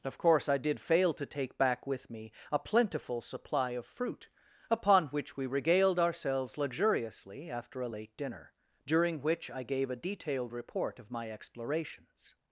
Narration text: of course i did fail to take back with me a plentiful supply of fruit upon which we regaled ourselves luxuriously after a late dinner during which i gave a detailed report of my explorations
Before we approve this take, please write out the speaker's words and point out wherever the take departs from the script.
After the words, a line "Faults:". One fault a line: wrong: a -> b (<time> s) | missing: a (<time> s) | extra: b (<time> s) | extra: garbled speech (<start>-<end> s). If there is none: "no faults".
of course i did fail to take back with me a plentiful supply of fruit upon which we regaled ourselves luxuriously after a late dinner during which i gave a detailed report of my explorations
Faults:
no faults